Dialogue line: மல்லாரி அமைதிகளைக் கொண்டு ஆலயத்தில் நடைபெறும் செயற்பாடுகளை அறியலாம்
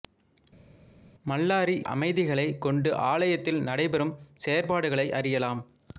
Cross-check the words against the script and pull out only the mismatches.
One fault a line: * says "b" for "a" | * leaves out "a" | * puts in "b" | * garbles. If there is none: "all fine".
all fine